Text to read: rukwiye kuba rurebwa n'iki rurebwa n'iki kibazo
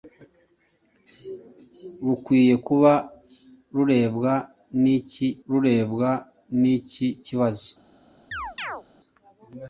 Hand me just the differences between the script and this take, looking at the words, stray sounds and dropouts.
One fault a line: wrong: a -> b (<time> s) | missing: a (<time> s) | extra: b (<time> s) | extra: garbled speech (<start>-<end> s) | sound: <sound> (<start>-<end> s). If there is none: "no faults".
sound: chirp (8.3-8.8 s)